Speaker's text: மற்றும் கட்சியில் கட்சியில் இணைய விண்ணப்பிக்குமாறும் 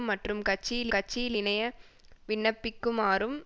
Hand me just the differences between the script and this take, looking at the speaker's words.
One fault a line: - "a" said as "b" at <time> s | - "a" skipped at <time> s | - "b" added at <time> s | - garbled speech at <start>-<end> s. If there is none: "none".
none